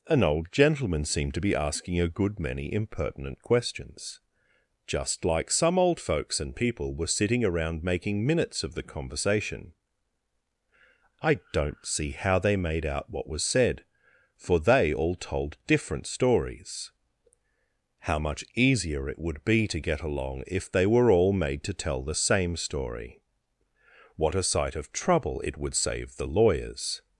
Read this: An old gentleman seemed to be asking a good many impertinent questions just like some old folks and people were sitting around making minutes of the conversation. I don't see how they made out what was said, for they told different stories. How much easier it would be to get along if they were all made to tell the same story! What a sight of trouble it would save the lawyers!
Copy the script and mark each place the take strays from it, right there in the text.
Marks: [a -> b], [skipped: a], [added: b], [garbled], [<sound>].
An old gentleman seemed to be asking a good many impertinent questions just like some old folks and people were sitting around making minutes of the conversation. I don't see how they made out what was said, for they [added: all] told different stories. How much easier it would be to get along if they were all made to tell the same story! What a sight of trouble it would save the lawyers!